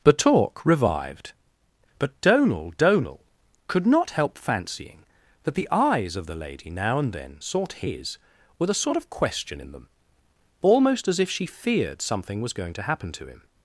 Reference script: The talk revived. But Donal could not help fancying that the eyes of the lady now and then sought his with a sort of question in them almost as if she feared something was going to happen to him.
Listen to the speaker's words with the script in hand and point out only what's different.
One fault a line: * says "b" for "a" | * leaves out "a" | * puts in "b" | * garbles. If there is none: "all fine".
* puts in "Donal"